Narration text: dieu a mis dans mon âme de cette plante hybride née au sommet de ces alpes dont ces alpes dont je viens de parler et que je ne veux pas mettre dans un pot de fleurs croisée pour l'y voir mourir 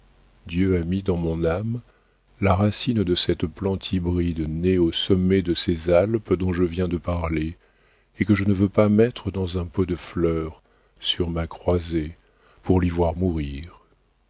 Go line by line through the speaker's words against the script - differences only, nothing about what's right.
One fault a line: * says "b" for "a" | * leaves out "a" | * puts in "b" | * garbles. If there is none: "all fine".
* puts in "la racine"
* leaves out "ces alpes dont"
* puts in "sur ma"